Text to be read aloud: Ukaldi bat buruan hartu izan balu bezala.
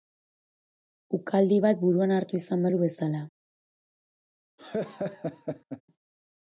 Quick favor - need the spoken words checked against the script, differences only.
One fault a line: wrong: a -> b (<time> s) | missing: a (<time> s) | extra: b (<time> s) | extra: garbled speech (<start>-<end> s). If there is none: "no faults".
no faults